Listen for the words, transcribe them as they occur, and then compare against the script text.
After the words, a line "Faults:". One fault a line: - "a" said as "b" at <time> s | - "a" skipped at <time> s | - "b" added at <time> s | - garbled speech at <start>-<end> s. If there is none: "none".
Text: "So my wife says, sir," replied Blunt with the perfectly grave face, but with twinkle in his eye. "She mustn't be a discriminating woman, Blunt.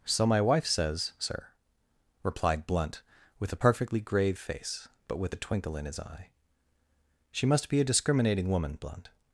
"So my wife says, sir," replied Blunt with a perfectly grave face, but with a twinkle in his eye. "She must be a discriminating woman, Blunt.
Faults:
- "the" said as "a" at 3.5 s
- "a" added at 5.3 s
- "mustn't" said as "must" at 7.5 s